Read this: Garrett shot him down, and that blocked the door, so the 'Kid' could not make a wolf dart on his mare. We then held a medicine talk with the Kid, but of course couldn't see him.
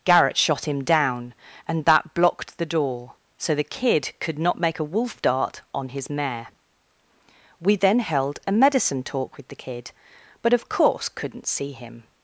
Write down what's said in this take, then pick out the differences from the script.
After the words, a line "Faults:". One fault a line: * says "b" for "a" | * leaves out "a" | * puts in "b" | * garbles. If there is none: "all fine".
Garrett shot him down, and that blocked the door, so the 'Kid' could not make a wolf dart on his mare. We then held a medicine talk with the Kid, but of course couldn't see him.
Faults:
all fine